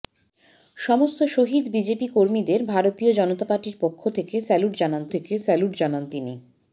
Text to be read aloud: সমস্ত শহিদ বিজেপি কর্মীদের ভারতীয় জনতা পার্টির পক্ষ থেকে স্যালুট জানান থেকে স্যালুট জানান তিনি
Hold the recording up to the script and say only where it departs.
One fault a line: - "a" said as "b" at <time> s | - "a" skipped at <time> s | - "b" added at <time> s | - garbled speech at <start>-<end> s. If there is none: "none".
none